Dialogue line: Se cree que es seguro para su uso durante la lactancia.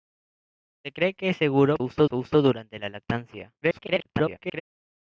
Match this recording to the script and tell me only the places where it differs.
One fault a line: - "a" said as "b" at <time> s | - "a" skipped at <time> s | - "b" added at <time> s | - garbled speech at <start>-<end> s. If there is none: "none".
- "para" said as "uso" at 1.8 s
- garbled speech at 3.6-4.6 s